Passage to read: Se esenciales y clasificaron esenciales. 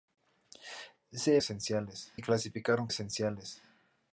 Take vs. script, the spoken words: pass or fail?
pass